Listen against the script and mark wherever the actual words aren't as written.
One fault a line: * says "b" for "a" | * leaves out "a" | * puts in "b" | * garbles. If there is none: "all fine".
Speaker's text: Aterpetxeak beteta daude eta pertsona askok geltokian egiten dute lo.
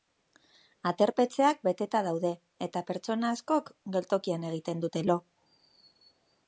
all fine